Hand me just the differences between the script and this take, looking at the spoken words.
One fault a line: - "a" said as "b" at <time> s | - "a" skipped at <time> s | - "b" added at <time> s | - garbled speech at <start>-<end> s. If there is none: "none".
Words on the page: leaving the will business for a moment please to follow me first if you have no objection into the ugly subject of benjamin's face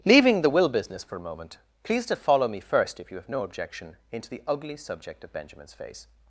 none